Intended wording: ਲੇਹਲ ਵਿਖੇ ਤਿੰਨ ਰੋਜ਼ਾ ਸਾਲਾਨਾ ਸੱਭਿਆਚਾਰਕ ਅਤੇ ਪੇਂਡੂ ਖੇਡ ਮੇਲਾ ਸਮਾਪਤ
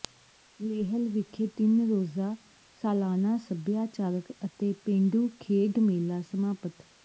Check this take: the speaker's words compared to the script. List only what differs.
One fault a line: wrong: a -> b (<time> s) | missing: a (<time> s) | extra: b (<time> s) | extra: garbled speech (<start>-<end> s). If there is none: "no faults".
no faults